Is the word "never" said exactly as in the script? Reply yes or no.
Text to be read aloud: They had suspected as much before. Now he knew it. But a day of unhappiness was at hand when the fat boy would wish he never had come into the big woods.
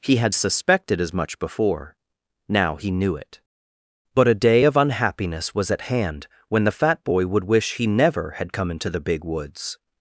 yes